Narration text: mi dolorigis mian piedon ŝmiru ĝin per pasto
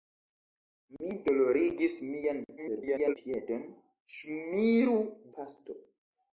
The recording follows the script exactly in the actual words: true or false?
false